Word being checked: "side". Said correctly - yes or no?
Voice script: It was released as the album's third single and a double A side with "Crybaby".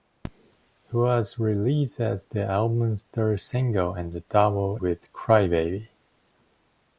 no